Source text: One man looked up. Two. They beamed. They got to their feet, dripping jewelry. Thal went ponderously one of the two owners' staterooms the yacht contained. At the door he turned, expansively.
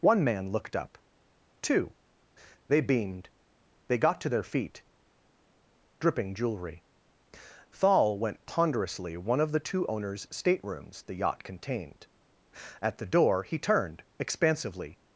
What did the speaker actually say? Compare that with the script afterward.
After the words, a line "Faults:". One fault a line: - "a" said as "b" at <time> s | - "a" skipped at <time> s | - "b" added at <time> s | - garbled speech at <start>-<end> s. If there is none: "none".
One man looked up. Two. They beamed. They got to their feet, dripping jewelry. Thal went ponderously one of the two owners' staterooms the yacht contained. At the door he turned, expansively.
Faults:
none